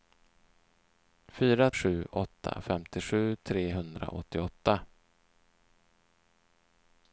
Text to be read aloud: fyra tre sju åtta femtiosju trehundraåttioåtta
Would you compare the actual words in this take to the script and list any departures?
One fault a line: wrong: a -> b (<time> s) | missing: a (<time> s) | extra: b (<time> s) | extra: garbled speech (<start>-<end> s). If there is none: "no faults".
missing: tre (1.7 s)